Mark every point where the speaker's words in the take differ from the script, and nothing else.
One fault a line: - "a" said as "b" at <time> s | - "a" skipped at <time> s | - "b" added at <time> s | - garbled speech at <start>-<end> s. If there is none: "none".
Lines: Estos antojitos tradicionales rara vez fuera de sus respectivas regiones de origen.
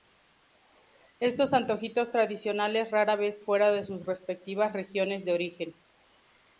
none